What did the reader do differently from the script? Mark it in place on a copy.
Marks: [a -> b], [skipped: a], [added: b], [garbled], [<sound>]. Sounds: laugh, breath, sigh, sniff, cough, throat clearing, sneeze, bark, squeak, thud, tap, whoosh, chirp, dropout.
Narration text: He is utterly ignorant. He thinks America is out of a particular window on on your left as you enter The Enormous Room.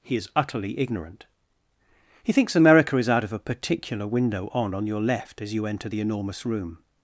He is utterly ignorant. He thinks America is out of a particular window on on your left as you enter The Enormous Room.